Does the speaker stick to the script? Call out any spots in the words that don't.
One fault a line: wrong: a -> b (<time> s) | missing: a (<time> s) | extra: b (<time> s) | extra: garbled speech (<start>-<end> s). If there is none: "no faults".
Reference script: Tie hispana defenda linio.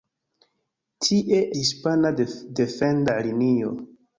no faults